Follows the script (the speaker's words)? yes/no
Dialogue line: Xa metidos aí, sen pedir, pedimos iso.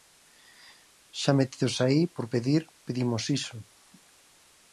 no